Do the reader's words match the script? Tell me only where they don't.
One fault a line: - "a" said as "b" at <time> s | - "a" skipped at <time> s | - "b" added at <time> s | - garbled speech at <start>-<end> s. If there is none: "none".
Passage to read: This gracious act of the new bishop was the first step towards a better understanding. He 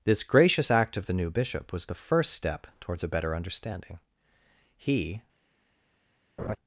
none